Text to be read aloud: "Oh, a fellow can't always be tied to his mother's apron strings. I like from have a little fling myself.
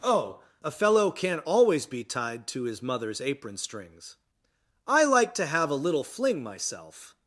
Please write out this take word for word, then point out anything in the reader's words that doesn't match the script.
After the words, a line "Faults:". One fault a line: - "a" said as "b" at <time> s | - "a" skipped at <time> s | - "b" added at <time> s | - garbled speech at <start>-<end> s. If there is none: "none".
"Oh, a fellow can't always be tied to his mother's apron strings. I like to have a little fling myself.
Faults:
- "from" said as "to" at 5.4 s